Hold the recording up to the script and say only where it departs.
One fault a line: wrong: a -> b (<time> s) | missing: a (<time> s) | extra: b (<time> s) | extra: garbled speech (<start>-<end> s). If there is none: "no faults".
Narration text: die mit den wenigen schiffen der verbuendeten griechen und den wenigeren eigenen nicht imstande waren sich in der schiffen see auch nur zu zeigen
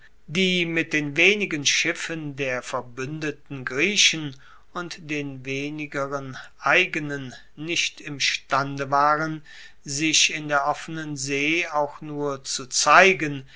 wrong: schiffen -> offenen (10.7 s)